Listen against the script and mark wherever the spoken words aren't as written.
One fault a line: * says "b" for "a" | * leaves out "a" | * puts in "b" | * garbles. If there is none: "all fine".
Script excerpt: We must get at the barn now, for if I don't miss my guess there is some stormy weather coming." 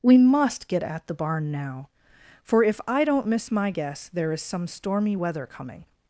all fine